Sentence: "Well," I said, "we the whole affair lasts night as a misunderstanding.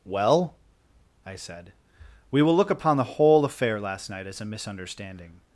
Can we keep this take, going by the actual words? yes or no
no